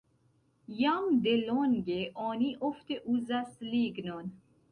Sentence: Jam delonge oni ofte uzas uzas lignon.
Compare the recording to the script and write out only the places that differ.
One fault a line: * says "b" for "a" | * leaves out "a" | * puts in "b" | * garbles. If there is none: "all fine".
* leaves out "uzas"